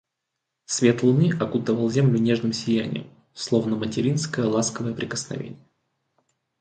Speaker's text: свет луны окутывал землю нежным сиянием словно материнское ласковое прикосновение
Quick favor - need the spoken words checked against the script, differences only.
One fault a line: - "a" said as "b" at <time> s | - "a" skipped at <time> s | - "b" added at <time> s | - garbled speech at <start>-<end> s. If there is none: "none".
none